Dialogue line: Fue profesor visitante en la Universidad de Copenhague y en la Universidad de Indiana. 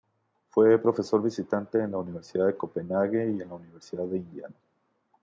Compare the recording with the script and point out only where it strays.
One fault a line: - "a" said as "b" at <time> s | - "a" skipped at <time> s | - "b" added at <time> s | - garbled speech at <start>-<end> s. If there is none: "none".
none